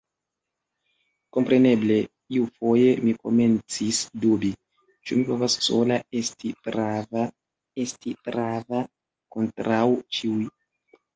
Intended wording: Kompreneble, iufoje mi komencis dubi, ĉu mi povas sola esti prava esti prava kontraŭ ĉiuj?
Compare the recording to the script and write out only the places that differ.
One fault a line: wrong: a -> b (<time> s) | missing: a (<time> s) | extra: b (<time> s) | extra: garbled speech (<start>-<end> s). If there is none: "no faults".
no faults